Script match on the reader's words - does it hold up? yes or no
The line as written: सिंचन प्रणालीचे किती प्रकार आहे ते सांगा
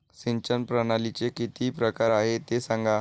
yes